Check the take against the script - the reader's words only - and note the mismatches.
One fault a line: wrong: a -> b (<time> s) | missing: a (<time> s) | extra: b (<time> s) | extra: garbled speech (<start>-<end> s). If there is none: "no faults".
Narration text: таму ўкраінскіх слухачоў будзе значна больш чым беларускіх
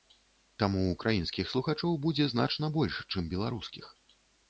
no faults